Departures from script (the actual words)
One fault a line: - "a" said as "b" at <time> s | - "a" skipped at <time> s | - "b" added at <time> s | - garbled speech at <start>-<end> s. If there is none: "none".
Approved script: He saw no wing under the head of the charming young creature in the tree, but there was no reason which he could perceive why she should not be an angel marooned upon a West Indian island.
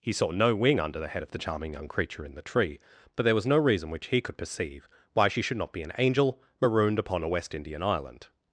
none